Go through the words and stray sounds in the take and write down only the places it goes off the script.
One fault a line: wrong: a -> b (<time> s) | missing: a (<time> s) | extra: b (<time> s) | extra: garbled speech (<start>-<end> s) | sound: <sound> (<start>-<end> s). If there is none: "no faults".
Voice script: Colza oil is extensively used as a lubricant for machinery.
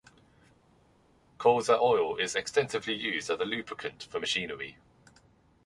no faults